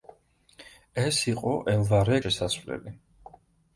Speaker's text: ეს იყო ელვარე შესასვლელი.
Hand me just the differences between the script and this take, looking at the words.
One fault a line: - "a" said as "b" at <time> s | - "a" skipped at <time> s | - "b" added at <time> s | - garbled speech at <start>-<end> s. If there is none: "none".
none